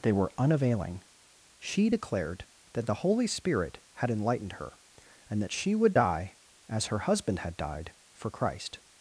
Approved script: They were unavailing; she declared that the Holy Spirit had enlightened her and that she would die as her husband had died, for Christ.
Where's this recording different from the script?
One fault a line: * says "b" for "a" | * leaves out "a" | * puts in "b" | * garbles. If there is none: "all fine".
all fine